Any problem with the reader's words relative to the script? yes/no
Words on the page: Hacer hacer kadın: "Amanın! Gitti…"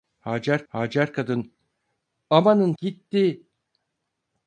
no